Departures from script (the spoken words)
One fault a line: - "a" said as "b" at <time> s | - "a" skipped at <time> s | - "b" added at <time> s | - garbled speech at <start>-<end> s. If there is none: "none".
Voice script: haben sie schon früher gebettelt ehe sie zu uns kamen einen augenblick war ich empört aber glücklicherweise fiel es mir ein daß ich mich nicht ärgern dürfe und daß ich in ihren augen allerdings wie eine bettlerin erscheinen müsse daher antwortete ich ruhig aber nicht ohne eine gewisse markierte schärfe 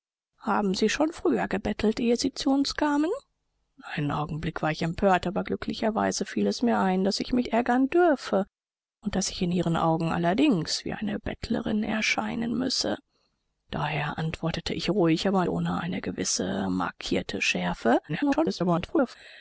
- "nicht" skipped at 7.5 s
- "nicht" skipped at 15.4 s
- garbled speech at 18.1-19.2 s